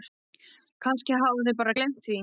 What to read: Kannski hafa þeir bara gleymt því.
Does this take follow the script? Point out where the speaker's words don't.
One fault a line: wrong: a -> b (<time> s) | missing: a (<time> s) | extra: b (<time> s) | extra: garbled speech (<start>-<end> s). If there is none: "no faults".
no faults